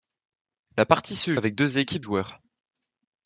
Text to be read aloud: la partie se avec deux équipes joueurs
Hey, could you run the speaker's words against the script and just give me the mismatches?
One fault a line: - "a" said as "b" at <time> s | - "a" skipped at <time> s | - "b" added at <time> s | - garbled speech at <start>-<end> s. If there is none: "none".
none